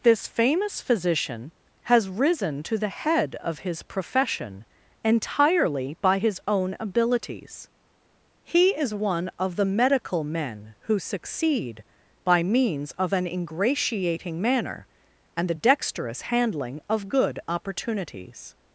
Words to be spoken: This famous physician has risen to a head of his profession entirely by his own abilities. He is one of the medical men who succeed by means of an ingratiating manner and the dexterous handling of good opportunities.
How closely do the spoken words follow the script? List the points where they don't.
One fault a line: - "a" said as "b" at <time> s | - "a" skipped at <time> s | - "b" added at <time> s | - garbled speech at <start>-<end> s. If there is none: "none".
- "a" said as "the" at 2.8 s